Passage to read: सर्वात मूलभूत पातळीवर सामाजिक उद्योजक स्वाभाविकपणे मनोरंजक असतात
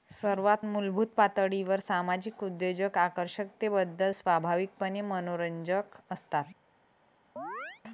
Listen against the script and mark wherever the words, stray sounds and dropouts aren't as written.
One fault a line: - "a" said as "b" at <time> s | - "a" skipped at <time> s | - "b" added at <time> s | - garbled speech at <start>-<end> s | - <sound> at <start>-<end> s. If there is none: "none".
- "आकर्षकतेबद्दल" added at 3.0 s
- chirp at 7.4-7.8 s